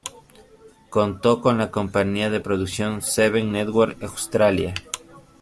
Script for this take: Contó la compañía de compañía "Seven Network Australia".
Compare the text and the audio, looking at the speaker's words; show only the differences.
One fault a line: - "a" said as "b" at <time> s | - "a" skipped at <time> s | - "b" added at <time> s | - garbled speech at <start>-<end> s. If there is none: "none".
- "con" added at 1.4 s
- "compañía" said as "producción" at 2.4 s